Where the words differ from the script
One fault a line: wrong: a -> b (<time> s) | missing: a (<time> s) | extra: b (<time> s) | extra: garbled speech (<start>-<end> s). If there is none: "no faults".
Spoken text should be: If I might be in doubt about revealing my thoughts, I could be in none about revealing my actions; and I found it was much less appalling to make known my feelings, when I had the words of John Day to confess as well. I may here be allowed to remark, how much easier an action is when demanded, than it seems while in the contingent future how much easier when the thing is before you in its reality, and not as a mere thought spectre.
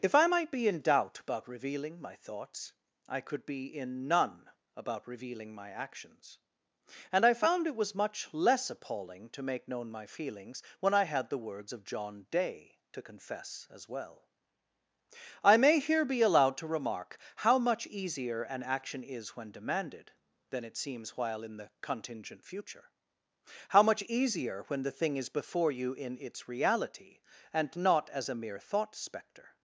no faults